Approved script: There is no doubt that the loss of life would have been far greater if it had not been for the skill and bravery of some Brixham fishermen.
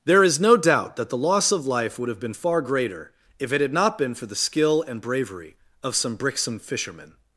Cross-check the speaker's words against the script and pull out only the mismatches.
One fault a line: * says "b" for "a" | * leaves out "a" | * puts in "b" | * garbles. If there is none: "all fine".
all fine